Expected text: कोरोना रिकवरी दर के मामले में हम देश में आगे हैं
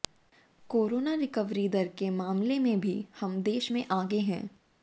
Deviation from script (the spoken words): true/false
true